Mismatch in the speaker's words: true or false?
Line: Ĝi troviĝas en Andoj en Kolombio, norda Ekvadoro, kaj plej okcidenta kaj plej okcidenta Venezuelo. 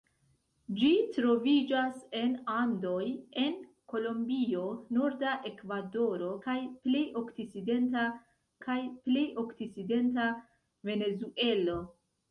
false